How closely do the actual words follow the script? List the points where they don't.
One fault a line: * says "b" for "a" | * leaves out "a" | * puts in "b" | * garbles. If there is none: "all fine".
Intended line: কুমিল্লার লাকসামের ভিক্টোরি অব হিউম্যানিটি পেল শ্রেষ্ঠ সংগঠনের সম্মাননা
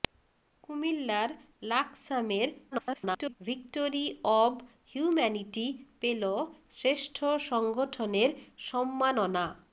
* garbles